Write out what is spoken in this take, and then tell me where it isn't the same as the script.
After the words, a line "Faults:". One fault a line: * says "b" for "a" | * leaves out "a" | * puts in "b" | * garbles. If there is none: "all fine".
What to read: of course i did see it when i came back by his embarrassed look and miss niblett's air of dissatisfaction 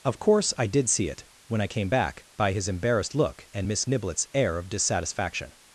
of course i did see it when i came back by his embarrassed look and miss niblett's air of dissatisfaction
Faults:
all fine